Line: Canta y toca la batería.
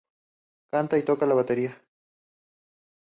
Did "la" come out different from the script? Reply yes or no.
no